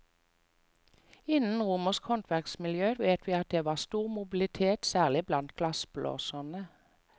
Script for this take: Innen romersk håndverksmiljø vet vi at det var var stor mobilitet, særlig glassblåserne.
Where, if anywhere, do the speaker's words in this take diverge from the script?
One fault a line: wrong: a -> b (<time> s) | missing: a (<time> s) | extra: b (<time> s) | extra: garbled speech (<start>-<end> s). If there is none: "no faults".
missing: var (3.7 s)
extra: blant (5.3 s)